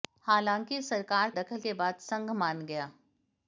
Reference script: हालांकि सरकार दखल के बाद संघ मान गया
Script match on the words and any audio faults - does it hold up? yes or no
yes